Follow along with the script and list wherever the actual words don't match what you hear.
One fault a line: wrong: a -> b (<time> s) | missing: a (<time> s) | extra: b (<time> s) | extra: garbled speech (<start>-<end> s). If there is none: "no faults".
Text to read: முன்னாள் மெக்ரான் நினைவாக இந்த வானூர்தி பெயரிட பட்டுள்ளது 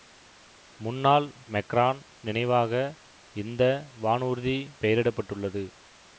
no faults